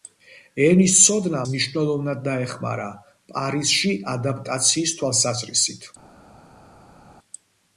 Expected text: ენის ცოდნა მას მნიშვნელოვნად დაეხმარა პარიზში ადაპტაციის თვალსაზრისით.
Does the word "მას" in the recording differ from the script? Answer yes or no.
yes